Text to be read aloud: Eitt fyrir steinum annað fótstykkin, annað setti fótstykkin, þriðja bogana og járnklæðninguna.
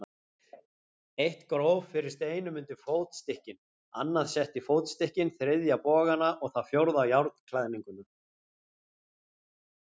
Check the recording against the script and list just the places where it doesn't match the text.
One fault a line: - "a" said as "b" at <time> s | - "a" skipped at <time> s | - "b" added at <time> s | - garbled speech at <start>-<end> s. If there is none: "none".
- "gróf" added at 1.5 s
- "annað" said as "undir" at 2.6 s
- "það fjórða" added at 6.6 s